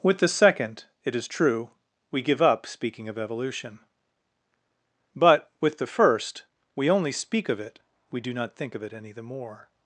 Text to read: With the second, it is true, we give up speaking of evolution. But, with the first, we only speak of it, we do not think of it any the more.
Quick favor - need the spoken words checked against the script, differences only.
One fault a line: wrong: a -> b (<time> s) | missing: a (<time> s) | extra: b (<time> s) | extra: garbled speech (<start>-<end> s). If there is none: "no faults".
no faults